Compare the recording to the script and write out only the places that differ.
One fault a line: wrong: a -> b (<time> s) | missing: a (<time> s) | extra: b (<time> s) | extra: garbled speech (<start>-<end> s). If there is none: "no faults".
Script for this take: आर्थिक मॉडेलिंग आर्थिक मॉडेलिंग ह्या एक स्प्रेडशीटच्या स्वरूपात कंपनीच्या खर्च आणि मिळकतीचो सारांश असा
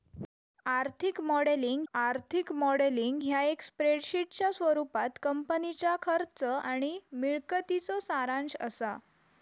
no faults